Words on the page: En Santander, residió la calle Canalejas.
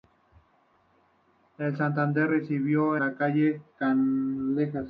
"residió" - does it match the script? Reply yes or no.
yes